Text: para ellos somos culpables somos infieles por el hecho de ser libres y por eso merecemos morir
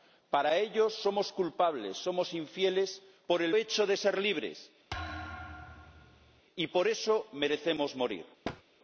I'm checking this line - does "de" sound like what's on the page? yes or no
yes